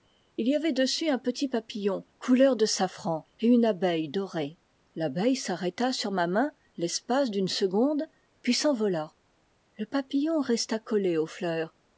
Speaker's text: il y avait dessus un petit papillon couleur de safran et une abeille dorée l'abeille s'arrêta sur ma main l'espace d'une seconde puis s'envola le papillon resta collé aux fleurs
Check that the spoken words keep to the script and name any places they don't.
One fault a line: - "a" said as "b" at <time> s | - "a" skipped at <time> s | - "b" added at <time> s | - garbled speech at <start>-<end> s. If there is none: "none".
none